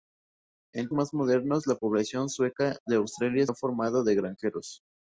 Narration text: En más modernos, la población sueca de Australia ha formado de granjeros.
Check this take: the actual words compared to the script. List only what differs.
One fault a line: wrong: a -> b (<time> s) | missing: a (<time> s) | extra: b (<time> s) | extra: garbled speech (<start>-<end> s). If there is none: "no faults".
no faults